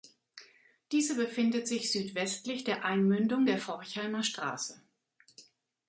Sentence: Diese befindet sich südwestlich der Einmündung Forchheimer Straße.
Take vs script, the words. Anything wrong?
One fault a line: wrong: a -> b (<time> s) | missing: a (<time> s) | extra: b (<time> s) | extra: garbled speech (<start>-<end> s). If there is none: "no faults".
extra: der (3.4 s)